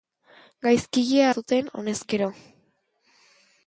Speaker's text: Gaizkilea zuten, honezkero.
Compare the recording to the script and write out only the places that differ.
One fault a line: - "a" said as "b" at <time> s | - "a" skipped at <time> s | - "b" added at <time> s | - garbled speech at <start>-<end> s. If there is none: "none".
none